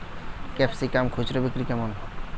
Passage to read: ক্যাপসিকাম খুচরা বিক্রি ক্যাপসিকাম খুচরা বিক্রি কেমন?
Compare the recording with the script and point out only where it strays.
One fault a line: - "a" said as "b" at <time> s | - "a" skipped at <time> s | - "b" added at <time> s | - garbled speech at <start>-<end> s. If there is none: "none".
- "ক্যাপসিকাম খুচরা বিক্রি" skipped at 1.6 s